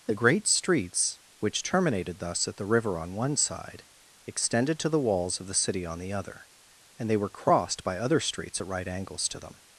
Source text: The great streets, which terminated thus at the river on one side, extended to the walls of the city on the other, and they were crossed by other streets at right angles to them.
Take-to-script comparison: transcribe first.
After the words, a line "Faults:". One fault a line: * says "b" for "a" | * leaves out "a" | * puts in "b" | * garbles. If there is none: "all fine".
The great streets, which terminated thus at the river on one side, extended to the walls of the city on the other, and they were crossed by other streets at right angles to them.
Faults:
all fine